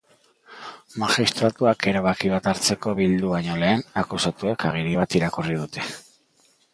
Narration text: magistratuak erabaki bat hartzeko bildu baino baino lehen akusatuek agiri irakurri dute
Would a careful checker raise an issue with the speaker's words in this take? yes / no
yes